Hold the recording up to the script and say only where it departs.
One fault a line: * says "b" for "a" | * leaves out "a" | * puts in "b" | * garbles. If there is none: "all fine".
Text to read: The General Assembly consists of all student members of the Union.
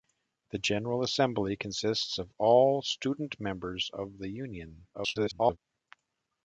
* garbles